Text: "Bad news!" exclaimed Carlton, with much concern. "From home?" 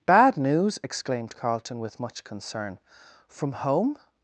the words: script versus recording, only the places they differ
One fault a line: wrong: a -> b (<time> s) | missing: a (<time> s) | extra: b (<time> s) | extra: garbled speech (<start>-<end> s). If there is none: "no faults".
no faults